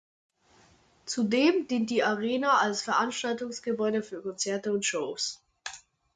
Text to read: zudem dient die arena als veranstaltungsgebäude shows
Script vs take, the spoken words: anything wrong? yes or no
yes